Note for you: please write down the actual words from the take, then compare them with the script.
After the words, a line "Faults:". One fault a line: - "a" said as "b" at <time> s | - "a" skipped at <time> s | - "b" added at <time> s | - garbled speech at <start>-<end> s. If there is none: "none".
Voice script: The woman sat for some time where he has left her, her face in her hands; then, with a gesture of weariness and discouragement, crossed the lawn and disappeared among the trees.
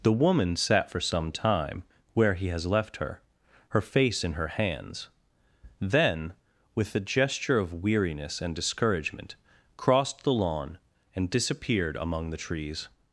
The woman sat for some time where he has left her, her face in her hands; then, with a gesture of weariness and discouragement, crossed the lawn and disappeared among the trees.
Faults:
none